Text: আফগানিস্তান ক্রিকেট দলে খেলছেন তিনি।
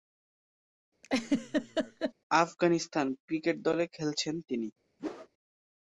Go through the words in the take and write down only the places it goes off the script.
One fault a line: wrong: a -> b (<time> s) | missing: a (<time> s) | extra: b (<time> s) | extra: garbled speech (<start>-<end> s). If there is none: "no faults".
no faults